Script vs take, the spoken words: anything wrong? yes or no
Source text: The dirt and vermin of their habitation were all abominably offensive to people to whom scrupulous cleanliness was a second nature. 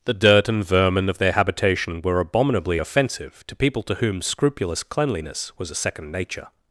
yes